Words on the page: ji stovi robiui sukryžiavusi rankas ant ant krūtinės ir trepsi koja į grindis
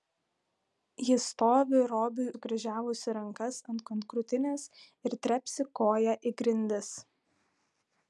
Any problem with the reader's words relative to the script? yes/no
no